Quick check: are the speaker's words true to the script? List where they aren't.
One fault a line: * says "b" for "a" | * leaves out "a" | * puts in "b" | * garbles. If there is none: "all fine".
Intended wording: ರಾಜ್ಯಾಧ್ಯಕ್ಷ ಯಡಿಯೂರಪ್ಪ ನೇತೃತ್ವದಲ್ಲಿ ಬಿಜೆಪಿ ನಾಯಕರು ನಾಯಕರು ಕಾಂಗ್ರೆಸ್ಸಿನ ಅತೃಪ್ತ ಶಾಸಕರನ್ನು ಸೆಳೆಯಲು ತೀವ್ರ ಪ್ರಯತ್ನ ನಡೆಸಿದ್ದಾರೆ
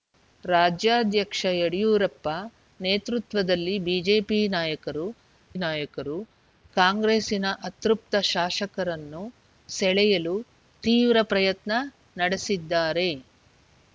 all fine